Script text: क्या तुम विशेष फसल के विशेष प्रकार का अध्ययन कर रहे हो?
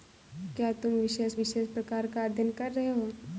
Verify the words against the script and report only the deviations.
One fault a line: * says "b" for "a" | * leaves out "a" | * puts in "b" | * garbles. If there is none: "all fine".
* leaves out "फसल के"